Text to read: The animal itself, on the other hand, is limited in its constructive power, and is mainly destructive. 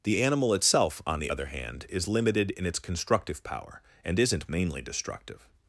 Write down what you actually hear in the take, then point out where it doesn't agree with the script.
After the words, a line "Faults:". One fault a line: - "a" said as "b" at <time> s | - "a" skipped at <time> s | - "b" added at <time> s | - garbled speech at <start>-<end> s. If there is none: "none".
The animal itself, on the other hand, is limited in its constructive power, and isn't mainly destructive.
Faults:
- "is" said as "isn't" at 4.2 s